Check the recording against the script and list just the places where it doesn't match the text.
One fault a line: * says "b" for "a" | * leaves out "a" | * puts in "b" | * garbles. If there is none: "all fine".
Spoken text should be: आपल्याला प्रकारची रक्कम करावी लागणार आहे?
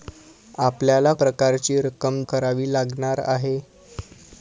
all fine